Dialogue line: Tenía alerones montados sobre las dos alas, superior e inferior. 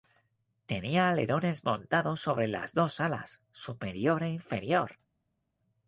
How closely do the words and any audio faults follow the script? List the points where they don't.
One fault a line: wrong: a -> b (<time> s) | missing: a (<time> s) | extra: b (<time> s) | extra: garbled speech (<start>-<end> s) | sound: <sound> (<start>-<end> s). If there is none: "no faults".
no faults